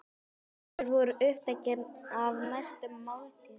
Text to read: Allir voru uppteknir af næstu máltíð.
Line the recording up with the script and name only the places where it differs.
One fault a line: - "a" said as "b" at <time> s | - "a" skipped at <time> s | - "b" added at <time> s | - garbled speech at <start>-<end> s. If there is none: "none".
none